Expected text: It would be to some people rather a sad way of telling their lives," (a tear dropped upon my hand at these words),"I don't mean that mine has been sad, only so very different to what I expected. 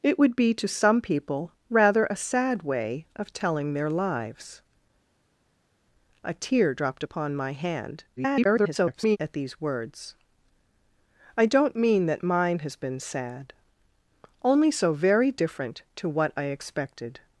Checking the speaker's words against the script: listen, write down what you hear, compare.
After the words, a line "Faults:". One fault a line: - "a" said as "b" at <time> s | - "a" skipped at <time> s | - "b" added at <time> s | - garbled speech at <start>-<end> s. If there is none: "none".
It would be to some people rather a sad way of telling their lives," (a tear dropped upon my hand [garbled] at these words),"I don't mean that mine has been sad, only so very different to what I expected.
Faults:
- garbled speech at 8.2-9.2 s